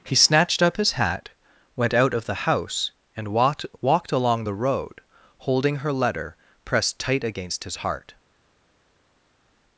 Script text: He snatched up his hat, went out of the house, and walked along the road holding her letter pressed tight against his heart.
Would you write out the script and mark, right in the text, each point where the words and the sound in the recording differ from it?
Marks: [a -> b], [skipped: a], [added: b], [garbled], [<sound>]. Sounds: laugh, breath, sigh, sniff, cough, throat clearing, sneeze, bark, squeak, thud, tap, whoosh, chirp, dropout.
He snatched up his hat, went out of the house, and walked [added: walked] along the road holding her letter pressed tight against his heart.